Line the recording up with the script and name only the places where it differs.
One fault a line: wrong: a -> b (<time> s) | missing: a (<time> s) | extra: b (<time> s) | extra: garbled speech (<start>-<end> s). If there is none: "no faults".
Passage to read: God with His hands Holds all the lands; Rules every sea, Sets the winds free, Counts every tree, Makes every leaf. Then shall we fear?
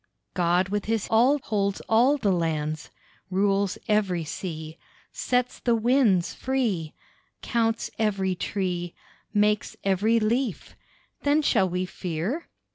wrong: hands -> all (1.1 s)